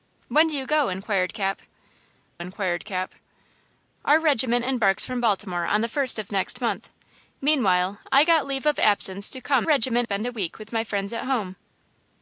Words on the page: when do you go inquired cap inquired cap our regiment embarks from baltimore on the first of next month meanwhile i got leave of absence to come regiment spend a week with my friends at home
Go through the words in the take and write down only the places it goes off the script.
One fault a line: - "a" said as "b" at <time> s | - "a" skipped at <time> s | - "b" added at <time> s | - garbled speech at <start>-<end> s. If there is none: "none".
none